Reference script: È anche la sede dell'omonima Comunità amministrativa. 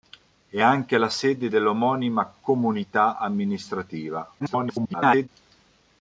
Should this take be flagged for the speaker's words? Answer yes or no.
yes